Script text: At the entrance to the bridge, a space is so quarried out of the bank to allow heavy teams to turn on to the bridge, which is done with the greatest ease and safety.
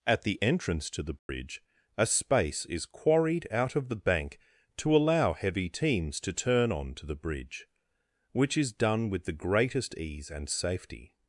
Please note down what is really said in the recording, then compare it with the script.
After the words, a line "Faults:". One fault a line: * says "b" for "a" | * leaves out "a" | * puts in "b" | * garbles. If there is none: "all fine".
At the entrance to the bridge, a space is quarried out of the bank to allow heavy teams to turn on to the bridge, which is done with the greatest ease and safety.
Faults:
* leaves out "so"